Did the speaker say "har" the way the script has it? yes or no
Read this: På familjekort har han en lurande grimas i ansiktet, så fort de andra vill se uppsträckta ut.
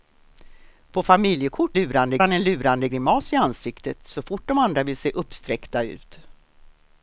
no